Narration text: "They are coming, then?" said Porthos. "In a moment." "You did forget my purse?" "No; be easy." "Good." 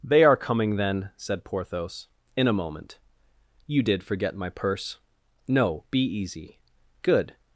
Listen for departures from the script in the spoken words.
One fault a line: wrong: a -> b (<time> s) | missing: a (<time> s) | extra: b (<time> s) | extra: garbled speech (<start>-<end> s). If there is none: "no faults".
no faults